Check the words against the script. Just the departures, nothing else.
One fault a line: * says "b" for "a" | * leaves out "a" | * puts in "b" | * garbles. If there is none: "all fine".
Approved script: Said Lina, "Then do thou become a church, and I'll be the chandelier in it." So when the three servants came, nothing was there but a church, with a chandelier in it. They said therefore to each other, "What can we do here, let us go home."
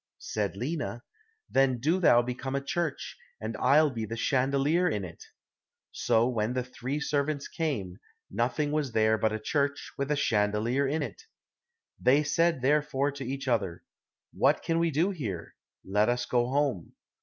all fine